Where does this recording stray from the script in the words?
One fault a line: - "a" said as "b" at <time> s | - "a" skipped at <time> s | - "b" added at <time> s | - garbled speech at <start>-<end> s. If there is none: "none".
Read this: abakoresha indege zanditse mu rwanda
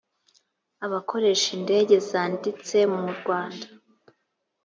none